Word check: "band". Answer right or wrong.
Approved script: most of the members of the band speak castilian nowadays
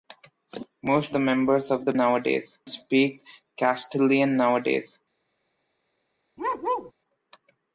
wrong